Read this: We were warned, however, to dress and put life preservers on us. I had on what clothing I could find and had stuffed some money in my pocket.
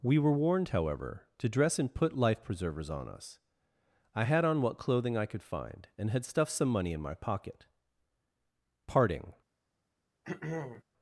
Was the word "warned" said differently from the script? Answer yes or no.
no